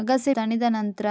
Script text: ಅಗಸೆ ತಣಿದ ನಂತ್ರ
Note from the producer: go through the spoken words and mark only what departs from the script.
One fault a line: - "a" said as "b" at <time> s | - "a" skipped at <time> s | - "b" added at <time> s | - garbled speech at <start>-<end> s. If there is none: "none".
none